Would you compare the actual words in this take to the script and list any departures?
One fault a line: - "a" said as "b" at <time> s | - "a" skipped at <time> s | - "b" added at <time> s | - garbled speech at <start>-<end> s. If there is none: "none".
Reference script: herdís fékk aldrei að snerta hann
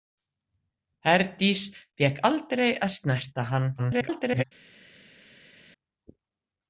- garbled speech at 3.8-4.4 s